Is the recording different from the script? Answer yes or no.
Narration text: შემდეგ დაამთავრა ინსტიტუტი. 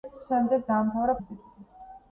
no